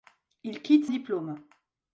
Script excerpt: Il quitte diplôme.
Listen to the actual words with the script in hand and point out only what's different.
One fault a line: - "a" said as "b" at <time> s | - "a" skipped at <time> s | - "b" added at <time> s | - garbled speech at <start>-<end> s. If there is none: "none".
none